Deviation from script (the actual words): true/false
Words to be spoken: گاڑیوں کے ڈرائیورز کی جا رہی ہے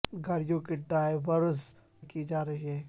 false